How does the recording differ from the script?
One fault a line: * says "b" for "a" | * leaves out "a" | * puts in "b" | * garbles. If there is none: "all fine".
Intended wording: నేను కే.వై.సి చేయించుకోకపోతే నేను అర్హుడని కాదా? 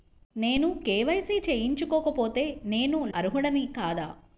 all fine